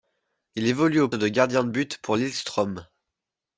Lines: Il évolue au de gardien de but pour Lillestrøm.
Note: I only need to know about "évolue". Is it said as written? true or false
true